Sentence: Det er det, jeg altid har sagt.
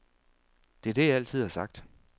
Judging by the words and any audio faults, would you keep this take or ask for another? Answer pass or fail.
pass